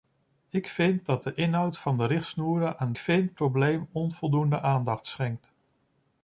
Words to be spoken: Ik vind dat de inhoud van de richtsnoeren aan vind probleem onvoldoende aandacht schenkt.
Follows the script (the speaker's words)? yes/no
yes